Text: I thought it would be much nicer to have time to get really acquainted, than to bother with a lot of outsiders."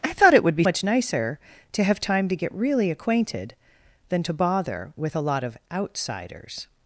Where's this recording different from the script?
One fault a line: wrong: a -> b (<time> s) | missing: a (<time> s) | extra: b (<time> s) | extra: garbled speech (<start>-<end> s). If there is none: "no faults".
no faults